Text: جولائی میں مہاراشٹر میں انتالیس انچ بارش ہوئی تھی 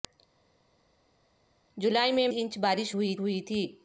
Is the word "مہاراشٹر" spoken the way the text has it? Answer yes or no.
no